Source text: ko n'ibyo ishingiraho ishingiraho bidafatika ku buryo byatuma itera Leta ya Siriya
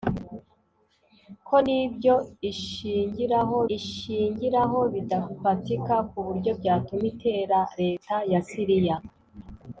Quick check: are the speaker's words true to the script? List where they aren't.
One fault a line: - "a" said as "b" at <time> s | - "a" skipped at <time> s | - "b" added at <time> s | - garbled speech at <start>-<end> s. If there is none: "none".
none